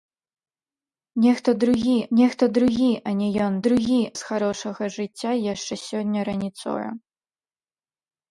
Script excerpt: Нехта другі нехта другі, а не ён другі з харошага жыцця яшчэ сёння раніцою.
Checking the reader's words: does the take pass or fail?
pass